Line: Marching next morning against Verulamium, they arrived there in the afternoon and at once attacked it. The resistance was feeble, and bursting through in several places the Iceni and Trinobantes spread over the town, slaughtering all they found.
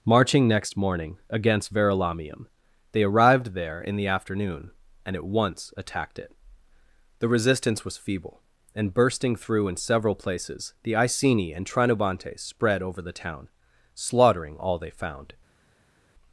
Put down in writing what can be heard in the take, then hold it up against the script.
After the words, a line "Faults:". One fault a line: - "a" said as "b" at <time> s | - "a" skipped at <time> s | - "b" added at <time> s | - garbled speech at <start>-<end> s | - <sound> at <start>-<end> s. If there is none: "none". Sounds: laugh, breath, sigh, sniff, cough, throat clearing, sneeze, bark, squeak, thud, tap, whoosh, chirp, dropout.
Marching next morning against Verulamium, they arrived there in the afternoon and at once attacked it. The resistance was feeble, and bursting through in several places the Iceni and Trinobantes spread over the town, slaughtering all they found.
Faults:
none